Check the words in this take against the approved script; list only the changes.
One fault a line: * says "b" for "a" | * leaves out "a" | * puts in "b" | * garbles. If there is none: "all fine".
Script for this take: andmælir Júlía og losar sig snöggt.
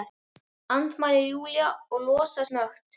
* leaves out "sig"